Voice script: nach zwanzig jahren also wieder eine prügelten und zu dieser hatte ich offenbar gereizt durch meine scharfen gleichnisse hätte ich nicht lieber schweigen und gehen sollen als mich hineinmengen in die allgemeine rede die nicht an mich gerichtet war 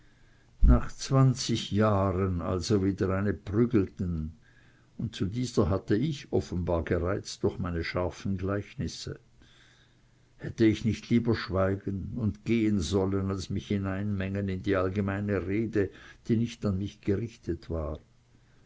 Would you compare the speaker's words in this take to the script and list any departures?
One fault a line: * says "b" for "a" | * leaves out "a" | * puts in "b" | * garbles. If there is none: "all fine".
all fine